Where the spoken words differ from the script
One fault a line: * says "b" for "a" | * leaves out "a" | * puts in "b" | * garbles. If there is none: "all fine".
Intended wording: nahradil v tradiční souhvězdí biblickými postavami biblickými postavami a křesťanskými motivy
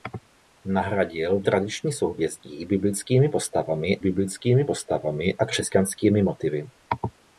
all fine